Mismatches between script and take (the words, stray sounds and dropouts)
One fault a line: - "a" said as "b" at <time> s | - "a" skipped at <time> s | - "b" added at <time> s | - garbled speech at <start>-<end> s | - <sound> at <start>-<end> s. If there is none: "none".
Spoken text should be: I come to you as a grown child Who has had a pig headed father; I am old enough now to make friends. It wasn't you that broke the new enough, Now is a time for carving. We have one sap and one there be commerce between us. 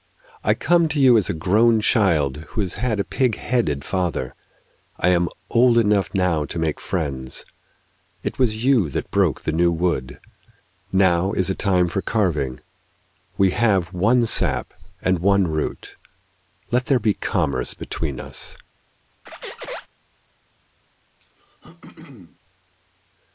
- "wasn't" said as "was" at 8.4 s
- "enough" said as "wood" at 9.7 s
- "root Let" added at 15.4 s
- squeak at 19.3-19.9 s
- throat clearing at 21.2-22.4 s